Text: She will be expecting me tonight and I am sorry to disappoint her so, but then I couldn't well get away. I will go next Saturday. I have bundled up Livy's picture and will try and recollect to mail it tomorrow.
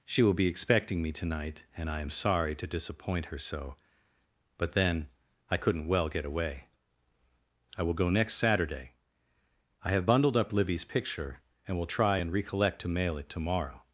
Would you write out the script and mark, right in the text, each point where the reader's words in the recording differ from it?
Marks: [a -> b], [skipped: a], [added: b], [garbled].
She will be expecting me tonight and I am sorry to disappoint her so, but then I couldn't well get away. I will go next Saturday. I have bundled up Livy's picture and will try and recollect to mail it tomorrow.